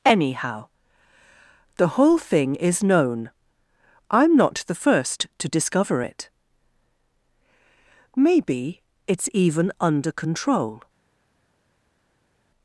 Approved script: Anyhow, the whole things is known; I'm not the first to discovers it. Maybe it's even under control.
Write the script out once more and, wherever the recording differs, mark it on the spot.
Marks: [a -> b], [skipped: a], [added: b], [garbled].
Anyhow, the whole [things -> thing] is known; I'm not the first to [discovers -> discover] it. Maybe it's even under control.